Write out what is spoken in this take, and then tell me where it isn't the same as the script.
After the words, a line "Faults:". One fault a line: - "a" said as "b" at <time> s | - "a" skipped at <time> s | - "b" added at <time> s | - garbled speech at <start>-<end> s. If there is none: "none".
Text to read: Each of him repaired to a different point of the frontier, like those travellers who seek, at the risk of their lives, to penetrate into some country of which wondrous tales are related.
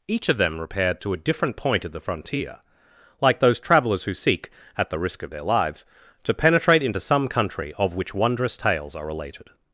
Each of them repaired to a different point of the frontier, like those travellers who seek, at the risk of their lives, to penetrate into some country of which wondrous tales are related.
Faults:
- "him" said as "them" at 0.4 s